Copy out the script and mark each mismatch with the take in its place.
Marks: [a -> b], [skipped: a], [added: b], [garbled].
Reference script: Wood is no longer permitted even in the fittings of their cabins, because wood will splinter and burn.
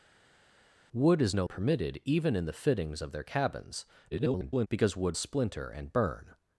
Wood is no [skipped: longer] permitted even in the fittings of their cabins, [garbled] because wood [skipped: will] splinter and burn.